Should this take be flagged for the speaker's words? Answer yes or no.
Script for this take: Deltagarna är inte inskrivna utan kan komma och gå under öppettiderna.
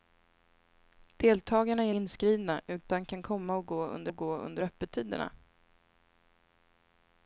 yes